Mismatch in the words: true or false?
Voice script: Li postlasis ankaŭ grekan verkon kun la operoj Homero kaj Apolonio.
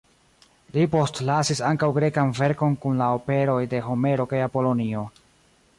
true